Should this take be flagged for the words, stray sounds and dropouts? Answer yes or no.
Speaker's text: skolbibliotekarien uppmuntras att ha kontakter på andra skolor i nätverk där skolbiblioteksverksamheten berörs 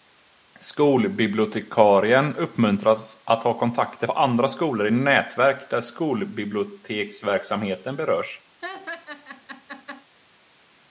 yes